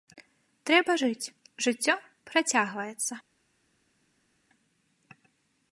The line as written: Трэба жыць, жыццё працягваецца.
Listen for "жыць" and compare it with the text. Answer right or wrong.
right